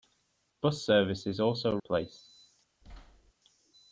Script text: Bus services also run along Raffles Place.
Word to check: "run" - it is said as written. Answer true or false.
false